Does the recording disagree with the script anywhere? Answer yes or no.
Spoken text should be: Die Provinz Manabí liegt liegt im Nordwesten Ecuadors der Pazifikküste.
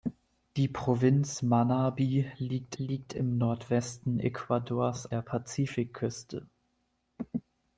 no